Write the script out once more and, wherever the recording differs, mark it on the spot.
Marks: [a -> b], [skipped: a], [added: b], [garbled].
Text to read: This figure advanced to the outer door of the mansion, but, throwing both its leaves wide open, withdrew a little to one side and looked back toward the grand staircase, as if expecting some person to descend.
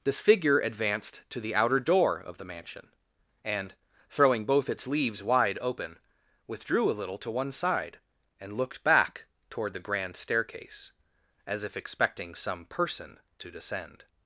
This figure advanced to the outer door of the mansion, [but, -> and] throwing both its leaves wide open, withdrew a little to one side and looked back toward the grand staircase, as if expecting some person to descend.